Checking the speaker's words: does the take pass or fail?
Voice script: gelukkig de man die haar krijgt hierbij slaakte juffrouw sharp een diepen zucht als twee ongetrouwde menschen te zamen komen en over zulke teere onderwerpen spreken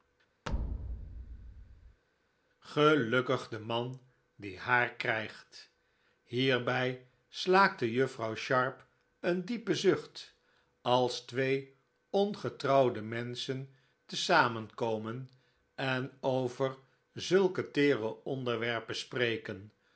pass